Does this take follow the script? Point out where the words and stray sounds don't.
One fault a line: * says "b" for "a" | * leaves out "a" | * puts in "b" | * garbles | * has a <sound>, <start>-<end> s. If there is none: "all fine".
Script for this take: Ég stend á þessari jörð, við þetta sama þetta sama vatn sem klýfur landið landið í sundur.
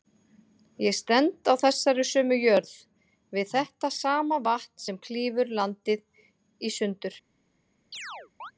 * puts in "sömu"
* leaves out "þetta sama"
* leaves out "landið"
* has a chirp, 7.9-8.5 s